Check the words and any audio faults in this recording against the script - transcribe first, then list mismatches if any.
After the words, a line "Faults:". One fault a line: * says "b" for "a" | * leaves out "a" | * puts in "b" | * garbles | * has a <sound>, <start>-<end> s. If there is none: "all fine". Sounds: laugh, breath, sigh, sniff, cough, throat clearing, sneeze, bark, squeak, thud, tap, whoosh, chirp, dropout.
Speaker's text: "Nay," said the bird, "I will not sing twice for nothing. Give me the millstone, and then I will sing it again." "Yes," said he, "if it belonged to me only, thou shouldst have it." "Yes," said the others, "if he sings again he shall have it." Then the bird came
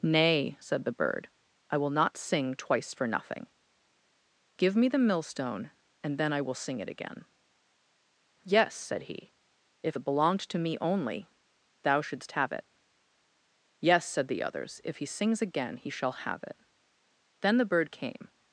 "Nay," said the bird, "I will not sing twice for nothing. Give me the millstone, and then I will sing it again." "Yes," said he, "if it belonged to me only, thou shouldst have it." "Yes," said the others, "if he sings again he shall have it." Then the bird came
Faults:
all fine